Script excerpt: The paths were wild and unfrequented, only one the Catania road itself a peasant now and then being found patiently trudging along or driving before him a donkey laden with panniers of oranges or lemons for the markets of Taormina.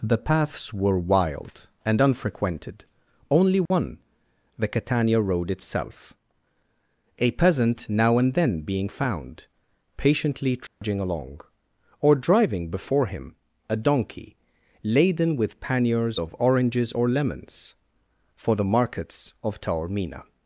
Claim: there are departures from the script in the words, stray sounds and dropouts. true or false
true